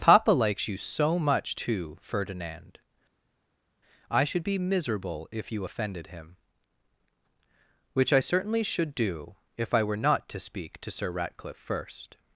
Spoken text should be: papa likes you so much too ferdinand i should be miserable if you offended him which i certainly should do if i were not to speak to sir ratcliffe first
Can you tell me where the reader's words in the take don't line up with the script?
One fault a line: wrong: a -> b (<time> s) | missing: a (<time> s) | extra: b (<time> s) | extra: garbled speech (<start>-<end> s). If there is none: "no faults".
no faults